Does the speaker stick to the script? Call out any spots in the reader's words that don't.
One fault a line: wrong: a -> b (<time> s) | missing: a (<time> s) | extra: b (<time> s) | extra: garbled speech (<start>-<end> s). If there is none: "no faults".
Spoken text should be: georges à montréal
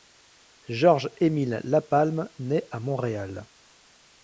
extra: émile lapalme naît (1.2 s)